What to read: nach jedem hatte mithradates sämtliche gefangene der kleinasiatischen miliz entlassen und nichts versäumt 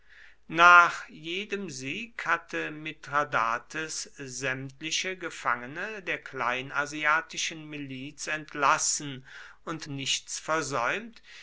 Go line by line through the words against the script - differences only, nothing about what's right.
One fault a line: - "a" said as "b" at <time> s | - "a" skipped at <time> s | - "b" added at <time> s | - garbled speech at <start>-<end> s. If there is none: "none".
- "sieg" added at 1.7 s